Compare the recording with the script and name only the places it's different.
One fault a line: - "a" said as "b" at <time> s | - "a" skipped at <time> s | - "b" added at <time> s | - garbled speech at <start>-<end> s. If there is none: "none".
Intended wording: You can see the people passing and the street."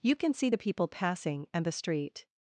none